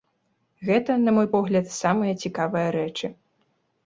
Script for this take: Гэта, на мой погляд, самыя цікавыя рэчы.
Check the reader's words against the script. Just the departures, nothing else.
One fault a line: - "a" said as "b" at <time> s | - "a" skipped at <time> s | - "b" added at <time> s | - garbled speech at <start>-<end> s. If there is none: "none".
none